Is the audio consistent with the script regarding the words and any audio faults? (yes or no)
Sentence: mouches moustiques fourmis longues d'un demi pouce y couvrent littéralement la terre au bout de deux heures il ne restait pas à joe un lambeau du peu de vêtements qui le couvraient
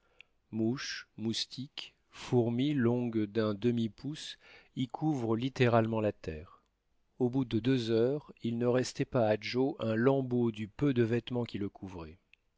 yes